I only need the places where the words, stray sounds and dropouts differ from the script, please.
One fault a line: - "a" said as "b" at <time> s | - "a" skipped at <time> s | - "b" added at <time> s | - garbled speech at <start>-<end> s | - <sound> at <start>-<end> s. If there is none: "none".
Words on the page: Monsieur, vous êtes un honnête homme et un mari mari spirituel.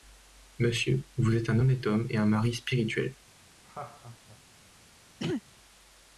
- "mari" skipped at 2.5 s
- laugh at 3.6-4.4 s
- throat clearing at 5.2-5.4 s